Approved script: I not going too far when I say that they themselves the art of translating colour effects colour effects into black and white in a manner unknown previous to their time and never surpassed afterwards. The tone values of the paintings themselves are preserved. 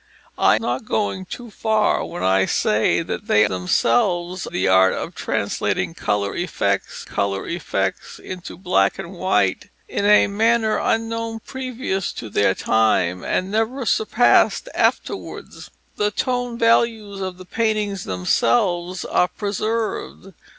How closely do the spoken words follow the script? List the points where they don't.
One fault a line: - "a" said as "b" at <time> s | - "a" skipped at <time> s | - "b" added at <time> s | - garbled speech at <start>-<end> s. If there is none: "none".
none